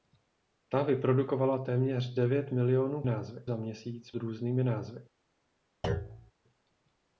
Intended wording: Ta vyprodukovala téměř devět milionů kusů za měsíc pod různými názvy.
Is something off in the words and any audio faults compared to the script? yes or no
yes